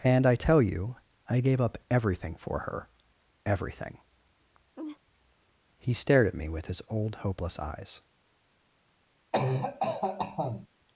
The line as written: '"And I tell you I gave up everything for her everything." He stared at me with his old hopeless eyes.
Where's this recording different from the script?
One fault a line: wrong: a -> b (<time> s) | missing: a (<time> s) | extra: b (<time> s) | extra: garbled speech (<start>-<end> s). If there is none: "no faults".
no faults